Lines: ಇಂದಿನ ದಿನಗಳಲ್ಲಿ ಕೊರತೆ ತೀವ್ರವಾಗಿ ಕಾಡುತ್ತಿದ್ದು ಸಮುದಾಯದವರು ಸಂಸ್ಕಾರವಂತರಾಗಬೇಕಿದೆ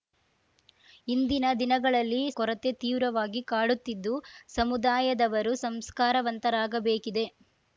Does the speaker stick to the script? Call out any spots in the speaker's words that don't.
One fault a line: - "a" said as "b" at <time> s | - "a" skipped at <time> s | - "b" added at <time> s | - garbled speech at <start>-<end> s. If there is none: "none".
none